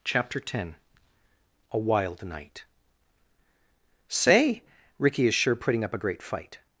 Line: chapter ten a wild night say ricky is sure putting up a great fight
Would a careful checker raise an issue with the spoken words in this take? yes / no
no